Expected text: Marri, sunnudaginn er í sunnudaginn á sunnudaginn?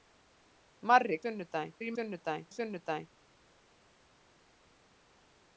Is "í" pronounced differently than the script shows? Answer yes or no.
no